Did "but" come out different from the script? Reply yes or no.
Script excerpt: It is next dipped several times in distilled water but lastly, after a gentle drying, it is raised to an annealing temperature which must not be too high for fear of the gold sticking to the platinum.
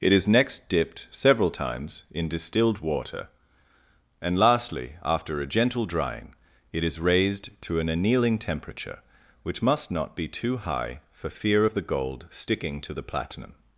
yes